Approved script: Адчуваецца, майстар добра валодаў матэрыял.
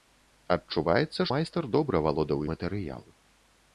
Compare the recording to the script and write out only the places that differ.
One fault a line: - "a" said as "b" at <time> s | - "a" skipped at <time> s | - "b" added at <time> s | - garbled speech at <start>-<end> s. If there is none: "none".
none